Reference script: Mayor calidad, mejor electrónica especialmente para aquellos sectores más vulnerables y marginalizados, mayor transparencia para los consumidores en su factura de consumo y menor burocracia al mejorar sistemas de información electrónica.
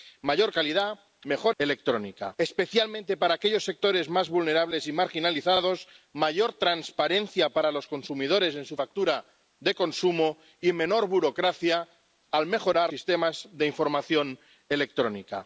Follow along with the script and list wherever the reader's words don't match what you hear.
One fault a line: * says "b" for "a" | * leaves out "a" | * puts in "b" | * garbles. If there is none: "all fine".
all fine